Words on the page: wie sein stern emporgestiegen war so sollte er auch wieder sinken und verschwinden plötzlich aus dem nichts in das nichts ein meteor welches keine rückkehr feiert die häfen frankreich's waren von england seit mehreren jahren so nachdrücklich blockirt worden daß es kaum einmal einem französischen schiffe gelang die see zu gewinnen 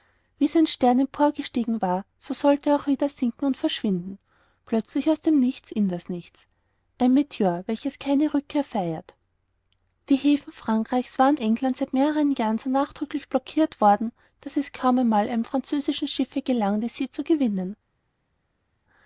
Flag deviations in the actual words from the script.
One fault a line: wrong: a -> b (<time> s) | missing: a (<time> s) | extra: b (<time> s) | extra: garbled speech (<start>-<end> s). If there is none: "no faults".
missing: von (11.4 s)